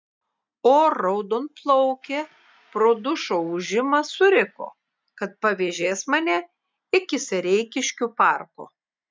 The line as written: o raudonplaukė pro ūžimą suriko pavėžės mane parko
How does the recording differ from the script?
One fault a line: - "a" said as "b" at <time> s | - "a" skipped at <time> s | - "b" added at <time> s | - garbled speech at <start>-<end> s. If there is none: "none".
- "dušo" added at 3.1 s
- "kad" added at 5.2 s
- "iki sereikiškių" added at 7.0 s